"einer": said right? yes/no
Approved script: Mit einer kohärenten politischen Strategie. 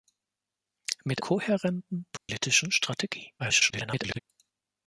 no